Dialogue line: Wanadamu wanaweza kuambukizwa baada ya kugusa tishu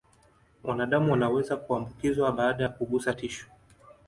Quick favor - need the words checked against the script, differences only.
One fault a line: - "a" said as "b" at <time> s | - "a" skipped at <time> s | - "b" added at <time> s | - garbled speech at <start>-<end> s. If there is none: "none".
none